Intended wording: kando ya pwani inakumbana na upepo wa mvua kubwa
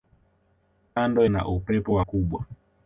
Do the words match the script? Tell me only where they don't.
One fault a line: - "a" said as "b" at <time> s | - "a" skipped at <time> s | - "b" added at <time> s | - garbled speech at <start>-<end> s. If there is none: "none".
- "ya pwani inakumbana" skipped at 1.2 s
- "mvua" skipped at 2.0 s